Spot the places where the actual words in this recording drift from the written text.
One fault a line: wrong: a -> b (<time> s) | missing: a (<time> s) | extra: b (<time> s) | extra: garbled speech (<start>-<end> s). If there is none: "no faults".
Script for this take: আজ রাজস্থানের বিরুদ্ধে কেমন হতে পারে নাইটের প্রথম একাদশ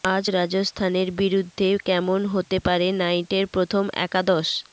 no faults